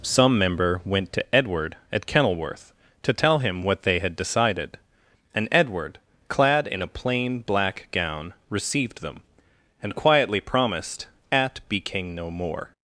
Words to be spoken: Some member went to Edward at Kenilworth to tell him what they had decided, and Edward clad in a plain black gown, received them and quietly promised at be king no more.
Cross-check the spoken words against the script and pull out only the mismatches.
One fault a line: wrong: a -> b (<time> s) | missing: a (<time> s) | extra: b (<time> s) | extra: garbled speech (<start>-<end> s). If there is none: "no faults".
no faults